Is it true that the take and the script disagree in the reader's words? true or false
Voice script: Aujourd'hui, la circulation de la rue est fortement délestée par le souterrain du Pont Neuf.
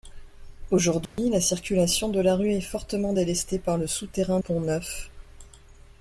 true